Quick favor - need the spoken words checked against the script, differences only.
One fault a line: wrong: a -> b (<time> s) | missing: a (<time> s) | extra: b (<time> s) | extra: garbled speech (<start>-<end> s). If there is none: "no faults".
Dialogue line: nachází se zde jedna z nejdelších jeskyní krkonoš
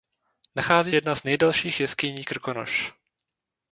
missing: se zde (0.9 s)